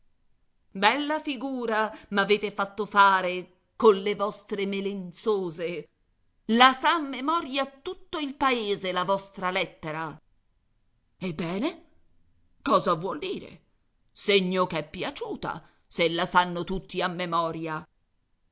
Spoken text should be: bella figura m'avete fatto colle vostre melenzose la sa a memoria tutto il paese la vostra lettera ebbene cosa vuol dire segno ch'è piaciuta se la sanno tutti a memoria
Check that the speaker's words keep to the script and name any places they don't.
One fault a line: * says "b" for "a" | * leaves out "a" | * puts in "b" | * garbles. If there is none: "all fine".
* puts in "fare"